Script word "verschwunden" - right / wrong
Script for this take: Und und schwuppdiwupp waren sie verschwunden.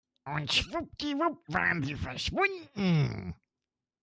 right